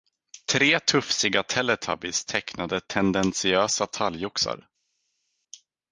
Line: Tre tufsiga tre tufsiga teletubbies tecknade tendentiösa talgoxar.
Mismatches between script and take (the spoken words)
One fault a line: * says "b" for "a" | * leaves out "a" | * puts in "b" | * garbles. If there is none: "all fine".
* leaves out "tre tufsiga"